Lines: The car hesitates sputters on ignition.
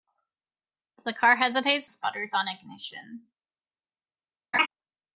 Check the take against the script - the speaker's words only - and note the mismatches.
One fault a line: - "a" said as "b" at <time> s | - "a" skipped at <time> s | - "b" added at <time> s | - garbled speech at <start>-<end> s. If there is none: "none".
none